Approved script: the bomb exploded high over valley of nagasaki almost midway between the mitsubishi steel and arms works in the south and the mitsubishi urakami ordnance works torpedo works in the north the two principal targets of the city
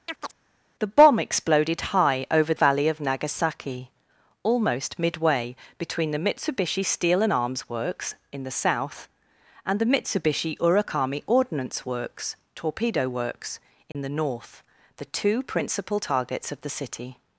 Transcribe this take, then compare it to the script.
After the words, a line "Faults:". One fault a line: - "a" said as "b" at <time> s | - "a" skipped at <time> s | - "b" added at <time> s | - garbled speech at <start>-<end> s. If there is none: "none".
the bomb exploded high over valley of nagasaki almost midway between the mitsubishi steel and arms works in the south and the mitsubishi urakami ordnance works torpedo works in the north the two principal targets of the city
Faults:
none